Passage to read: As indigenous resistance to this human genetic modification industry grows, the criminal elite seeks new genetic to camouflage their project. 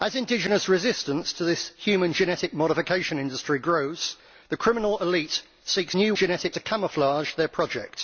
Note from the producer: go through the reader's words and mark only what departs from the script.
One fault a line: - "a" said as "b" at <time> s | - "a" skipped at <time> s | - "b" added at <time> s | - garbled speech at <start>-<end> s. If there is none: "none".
none